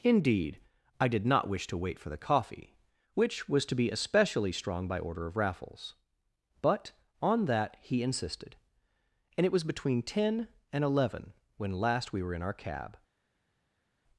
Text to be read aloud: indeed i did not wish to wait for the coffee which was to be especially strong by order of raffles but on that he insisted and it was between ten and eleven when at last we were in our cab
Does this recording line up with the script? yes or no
no